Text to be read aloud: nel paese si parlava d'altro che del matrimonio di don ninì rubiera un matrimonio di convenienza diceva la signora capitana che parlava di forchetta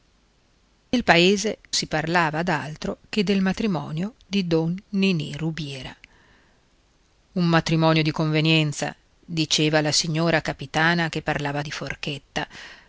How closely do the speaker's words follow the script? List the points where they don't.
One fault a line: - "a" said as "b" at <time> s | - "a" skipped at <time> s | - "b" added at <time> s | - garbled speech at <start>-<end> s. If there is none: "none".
none